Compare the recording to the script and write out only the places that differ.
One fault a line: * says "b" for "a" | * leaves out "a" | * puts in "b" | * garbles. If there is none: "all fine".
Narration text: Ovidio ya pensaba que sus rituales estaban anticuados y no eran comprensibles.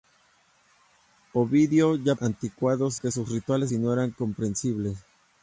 * says "anticuados" for "pensaba"
* leaves out "estaban anticuados"